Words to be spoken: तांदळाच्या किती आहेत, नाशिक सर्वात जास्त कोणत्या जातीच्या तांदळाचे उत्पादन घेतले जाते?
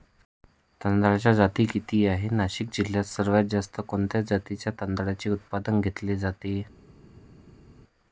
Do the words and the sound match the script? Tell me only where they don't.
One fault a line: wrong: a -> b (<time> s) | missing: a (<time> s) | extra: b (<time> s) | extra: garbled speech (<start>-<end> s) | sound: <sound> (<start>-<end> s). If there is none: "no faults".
extra: जाती (1.3 s)
extra: जिल्ह्यात (2.7 s)